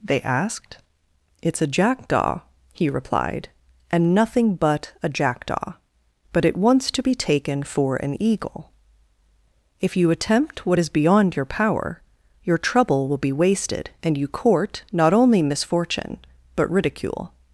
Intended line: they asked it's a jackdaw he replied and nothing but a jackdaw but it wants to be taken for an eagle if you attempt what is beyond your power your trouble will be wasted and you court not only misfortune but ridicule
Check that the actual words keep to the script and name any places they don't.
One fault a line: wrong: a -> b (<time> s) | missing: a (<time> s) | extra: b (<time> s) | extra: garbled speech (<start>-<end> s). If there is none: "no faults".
no faults